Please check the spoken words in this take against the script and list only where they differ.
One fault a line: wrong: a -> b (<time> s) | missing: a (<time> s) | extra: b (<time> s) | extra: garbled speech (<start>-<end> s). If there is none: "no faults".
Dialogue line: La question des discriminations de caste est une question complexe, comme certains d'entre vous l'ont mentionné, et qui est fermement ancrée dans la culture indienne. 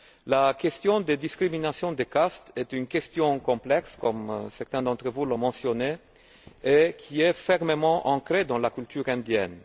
no faults